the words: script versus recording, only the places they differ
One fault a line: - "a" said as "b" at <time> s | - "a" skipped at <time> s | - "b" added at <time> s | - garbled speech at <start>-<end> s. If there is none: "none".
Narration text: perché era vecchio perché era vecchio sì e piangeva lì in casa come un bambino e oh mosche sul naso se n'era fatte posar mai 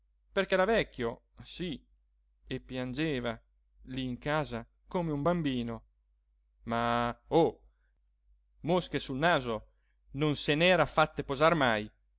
- "perché era vecchio" skipped at 1.2 s
- "e" said as "ma" at 6.6 s
- "non" added at 10.1 s